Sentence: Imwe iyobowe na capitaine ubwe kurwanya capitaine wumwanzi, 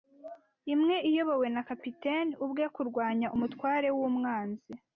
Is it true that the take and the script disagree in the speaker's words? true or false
true